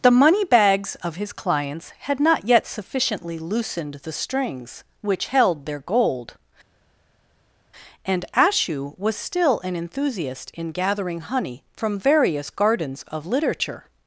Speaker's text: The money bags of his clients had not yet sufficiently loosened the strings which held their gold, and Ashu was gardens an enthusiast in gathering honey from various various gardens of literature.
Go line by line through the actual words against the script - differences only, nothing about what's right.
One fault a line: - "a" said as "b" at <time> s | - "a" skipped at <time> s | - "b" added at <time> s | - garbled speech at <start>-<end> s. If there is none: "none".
- "gardens" said as "still" at 9.1 s
- "various" skipped at 12.5 s